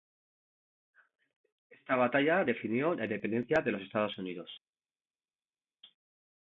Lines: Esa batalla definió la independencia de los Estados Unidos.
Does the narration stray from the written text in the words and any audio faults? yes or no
yes